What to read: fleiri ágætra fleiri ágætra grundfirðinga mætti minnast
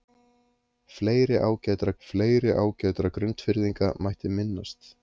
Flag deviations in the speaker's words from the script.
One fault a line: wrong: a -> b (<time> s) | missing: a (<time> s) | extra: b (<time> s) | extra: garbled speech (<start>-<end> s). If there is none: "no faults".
no faults